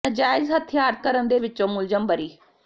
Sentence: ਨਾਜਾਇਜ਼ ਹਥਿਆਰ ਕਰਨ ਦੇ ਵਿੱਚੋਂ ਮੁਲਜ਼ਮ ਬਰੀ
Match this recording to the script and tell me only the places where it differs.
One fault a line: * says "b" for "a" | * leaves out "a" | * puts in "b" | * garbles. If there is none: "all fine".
all fine